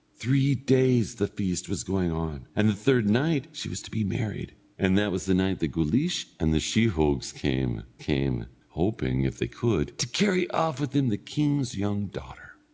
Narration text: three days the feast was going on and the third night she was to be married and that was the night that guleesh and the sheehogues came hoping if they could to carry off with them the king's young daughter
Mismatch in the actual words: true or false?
true